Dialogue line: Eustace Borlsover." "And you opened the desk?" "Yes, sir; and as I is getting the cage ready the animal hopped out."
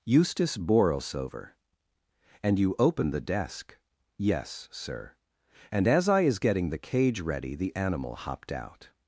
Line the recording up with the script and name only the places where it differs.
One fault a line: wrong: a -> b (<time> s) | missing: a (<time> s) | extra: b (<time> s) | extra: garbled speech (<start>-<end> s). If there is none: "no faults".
no faults